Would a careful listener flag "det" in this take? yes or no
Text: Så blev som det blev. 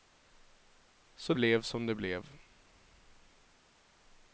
no